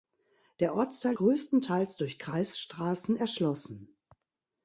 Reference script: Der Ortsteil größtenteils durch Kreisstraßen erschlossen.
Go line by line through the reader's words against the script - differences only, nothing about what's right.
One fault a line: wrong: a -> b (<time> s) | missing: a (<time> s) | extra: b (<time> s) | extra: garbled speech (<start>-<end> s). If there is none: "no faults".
no faults